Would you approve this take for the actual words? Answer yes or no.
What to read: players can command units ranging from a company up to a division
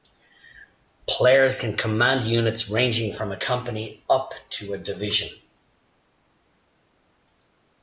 yes